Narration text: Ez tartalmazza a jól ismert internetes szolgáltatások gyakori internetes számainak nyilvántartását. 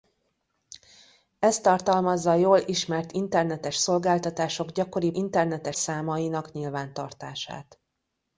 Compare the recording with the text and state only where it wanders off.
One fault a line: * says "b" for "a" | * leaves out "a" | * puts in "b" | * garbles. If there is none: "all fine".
all fine